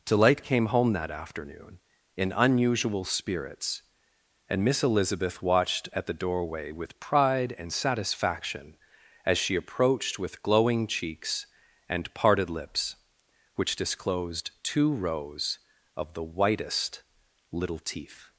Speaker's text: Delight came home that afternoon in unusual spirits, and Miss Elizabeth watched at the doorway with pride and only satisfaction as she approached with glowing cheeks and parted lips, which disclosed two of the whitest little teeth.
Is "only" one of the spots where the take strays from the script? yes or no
yes